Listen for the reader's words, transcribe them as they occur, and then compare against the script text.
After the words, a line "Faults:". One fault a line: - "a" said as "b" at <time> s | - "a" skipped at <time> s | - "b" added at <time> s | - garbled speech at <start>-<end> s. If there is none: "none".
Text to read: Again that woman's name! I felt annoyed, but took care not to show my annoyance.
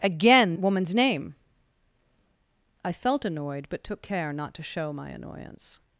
Again woman's name! I felt annoyed, but took care not to show my annoyance.
Faults:
- "that" skipped at 0.6 s